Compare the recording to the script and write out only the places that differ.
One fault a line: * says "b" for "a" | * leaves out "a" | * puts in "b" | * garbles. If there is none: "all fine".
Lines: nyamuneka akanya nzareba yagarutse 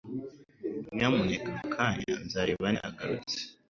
all fine